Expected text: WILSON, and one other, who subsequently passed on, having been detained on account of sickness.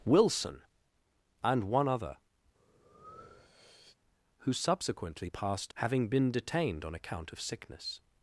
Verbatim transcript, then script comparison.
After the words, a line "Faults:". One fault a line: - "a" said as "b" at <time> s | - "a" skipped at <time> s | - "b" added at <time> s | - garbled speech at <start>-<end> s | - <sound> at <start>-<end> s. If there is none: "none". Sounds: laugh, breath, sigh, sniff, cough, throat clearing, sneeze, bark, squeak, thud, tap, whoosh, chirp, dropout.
WILSON, and one other, who subsequently passed having been detained on account of sickness.
Faults:
- breath at 2.5-4.0 s
- "on" skipped at 5.7 s